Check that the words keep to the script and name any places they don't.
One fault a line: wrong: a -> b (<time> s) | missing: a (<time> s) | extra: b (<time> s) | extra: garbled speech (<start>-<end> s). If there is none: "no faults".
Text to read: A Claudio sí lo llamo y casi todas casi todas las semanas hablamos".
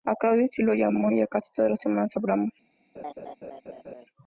missing: casi todas (1.7 s)